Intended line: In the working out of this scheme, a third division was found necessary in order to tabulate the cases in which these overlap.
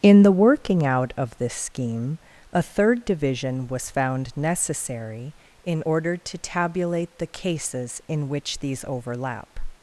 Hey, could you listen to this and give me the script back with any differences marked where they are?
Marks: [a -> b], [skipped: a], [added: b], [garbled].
In the working out of this scheme, a third division was found necessary in order to tabulate the cases in which these overlap.